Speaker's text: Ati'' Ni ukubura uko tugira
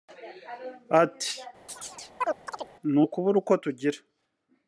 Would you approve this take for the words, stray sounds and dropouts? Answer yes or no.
no